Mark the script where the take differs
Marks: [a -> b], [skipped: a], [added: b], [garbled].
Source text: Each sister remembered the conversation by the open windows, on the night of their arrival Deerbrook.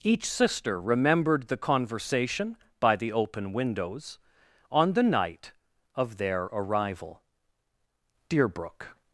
Each sister remembered the conversation by the open windows, on the night of their arrival Deerbrook.